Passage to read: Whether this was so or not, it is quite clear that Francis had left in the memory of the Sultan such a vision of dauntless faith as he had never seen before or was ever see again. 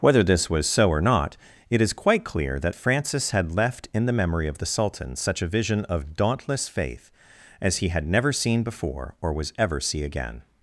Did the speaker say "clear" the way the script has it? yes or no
yes